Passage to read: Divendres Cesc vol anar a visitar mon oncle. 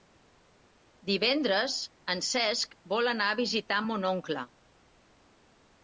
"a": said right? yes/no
yes